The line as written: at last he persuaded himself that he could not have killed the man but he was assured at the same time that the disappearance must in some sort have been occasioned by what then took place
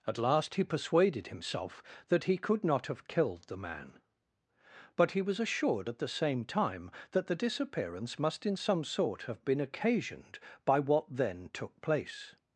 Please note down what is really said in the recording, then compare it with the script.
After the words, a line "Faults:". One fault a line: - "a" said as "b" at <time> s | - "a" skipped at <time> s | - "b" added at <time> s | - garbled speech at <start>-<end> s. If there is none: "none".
at last he persuaded himself that he could not have killed the man but he was assured at the same time that the disappearance must in some sort have been occasioned by what then took place
Faults:
none